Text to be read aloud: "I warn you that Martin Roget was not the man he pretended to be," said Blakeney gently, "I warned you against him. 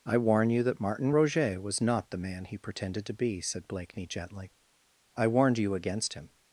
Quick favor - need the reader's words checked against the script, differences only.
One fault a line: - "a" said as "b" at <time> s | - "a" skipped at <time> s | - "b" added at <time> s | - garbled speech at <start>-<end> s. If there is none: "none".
none